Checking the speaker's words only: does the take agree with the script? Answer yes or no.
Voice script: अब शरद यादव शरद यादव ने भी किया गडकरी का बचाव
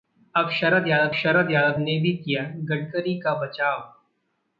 yes